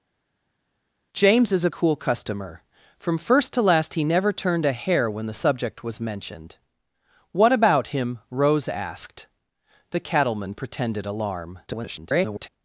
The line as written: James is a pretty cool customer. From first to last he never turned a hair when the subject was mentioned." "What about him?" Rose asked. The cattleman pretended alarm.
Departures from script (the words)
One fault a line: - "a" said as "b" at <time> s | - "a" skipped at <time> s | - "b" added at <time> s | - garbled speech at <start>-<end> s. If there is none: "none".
- "pretty" skipped at 1.7 s
- garbled speech at 11.7-12.5 s